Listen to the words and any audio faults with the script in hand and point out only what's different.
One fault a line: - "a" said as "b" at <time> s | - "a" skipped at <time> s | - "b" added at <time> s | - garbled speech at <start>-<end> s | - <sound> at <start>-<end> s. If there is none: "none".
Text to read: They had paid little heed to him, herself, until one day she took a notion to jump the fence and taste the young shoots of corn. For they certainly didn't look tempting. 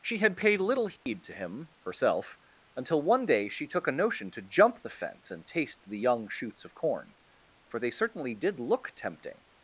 - "They" said as "She" at 0.0 s
- dropout at 1.0-1.1 s
- "didn't" said as "did" at 8.3 s